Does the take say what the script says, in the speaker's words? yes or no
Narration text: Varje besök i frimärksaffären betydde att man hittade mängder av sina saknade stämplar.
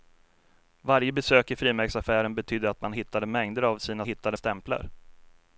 no